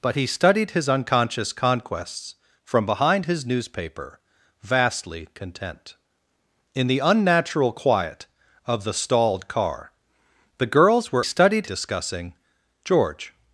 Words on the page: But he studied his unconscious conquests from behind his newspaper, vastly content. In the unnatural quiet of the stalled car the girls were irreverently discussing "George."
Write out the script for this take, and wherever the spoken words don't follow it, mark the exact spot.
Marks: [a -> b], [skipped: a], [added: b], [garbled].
But he studied his unconscious conquests from behind his newspaper, vastly content. In the unnatural quiet of the stalled car the girls were [irreverently -> studied] discussing "George."